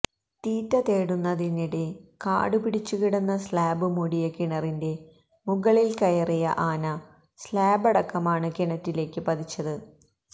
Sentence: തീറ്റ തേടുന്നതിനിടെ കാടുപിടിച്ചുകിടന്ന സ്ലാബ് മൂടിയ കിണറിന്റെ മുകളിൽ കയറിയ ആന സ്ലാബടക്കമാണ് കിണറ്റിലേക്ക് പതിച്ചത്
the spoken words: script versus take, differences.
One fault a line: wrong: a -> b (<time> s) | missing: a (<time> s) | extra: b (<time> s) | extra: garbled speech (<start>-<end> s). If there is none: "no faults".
no faults